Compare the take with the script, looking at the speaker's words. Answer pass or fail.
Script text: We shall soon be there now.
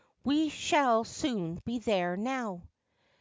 pass